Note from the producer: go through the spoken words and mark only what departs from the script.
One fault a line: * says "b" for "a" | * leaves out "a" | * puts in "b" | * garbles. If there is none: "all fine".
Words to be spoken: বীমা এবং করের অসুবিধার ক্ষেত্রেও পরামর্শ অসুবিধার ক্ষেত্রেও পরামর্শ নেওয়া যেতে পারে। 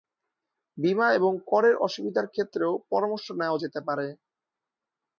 * leaves out "অসুবিধার ক্ষেত্রেও পরামর্শ"